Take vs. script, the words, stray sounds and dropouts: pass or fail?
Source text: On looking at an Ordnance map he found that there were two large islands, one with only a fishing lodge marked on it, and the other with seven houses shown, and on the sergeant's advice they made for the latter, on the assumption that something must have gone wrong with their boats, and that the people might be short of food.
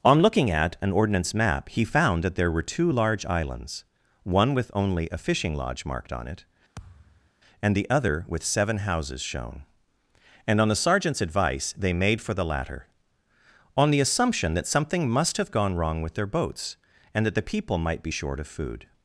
fail